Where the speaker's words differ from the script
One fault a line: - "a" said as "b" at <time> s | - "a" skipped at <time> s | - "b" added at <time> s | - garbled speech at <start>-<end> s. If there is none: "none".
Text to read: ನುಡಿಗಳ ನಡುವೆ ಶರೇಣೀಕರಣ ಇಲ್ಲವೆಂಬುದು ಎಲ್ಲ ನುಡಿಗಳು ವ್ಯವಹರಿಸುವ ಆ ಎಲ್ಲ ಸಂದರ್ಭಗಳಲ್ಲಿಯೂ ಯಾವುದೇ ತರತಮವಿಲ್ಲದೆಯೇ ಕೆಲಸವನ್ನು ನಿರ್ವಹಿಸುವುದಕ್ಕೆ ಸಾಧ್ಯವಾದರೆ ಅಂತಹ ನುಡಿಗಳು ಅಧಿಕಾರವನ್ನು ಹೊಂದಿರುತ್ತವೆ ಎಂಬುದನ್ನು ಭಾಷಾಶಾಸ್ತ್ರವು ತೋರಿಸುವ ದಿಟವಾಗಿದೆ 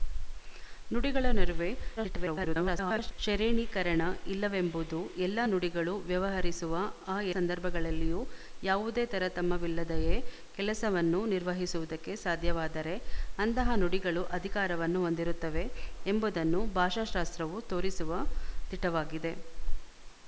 - garbled speech at 2.0-3.1 s
- "ಎಲ್ಲ" skipped at 7.3 s